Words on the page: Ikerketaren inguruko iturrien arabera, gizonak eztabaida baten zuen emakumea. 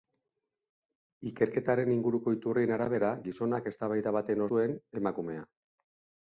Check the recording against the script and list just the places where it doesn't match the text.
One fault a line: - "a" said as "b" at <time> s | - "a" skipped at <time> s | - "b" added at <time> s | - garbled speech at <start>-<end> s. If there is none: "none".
none